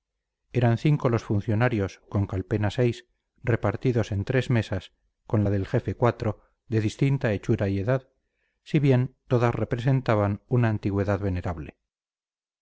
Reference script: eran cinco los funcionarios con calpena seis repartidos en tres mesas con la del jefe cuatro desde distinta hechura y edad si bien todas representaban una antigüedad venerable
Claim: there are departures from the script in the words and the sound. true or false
true